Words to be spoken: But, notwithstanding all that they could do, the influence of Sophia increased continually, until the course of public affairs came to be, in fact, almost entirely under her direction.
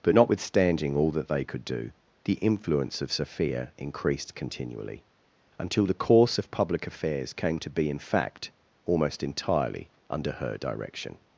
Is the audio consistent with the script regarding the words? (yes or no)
yes